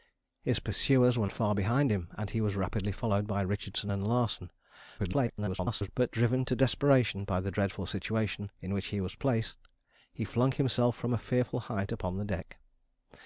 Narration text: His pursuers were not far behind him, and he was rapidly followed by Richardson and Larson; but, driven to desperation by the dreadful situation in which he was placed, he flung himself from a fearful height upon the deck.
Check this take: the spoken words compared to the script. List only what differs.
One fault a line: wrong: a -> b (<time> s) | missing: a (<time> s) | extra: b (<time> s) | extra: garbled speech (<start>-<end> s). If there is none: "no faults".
missing: not (1.3 s)
extra: garbled speech (5.0-5.9 s)